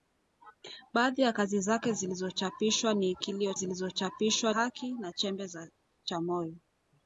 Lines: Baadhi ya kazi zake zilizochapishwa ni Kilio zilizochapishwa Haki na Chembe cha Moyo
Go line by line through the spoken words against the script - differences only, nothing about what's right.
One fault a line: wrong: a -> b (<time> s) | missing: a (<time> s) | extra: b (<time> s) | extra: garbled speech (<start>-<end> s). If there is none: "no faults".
no faults